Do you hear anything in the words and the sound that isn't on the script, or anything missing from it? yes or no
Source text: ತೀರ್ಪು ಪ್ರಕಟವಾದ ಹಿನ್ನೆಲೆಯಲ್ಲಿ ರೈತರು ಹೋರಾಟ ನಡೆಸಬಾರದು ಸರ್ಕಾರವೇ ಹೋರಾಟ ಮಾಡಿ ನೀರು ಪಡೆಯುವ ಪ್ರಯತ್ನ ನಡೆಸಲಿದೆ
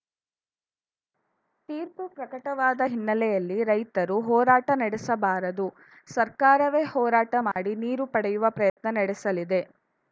yes